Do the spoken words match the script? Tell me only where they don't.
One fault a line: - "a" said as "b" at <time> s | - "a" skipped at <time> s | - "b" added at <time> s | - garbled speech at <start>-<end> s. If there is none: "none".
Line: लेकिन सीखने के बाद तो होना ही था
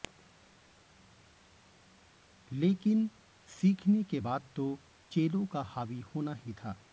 - "चेलों का हावी" added at 5.1 s